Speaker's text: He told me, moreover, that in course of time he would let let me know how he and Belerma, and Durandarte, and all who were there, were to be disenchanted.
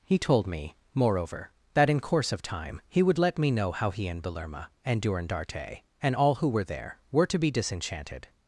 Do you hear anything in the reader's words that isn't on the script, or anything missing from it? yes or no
yes